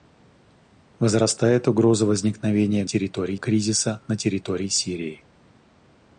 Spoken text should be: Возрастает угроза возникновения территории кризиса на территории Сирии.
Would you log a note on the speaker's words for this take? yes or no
no